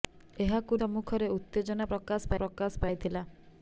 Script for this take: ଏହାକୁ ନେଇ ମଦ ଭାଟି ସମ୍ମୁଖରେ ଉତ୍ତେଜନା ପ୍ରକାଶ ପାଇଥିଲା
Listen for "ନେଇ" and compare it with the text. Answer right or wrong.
wrong